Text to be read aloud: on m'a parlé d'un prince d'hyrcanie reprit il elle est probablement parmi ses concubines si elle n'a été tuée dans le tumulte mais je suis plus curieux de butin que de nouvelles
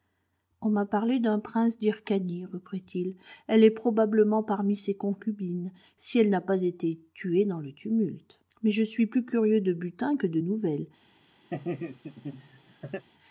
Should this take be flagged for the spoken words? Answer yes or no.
yes